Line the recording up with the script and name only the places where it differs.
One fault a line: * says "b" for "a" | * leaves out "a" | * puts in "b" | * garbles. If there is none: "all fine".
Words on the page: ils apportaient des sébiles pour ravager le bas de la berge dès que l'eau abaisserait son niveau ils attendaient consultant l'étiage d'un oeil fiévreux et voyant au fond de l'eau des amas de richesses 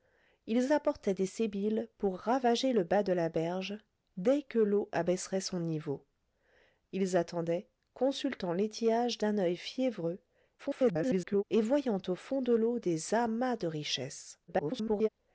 * garbles
* garbles